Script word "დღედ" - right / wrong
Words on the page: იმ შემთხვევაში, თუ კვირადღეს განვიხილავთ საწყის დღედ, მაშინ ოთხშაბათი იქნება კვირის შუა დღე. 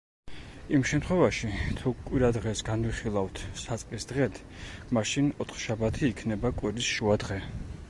right